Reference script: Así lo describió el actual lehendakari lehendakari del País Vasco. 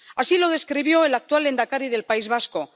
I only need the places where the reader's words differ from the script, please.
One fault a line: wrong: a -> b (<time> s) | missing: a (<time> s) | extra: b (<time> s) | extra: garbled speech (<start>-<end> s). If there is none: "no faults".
missing: lehendakari (1.9 s)